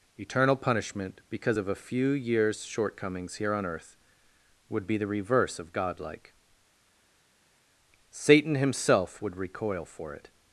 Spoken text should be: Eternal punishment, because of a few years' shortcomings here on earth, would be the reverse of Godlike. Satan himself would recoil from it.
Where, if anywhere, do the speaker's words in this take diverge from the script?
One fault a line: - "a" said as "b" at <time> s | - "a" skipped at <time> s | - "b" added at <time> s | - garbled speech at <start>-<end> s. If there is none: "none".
- "from" said as "for" at 9.9 s